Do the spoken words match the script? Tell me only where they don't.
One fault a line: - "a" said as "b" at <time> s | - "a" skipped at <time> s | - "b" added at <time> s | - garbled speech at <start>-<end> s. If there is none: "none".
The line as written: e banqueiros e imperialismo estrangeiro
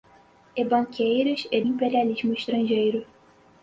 none